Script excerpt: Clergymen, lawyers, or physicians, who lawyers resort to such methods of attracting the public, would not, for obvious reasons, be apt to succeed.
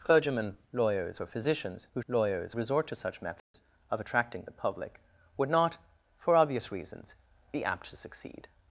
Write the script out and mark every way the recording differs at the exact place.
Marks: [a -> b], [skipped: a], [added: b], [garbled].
Clergymen, lawyers, or physicians, who lawyers resort to such methods of attracting the public, would not, for obvious reasons, be apt to succeed.